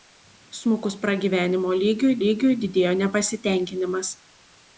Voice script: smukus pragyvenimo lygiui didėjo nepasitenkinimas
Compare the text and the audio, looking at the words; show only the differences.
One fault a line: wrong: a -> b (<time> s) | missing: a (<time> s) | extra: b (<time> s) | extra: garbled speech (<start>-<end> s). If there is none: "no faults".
extra: lygiui (2.2 s)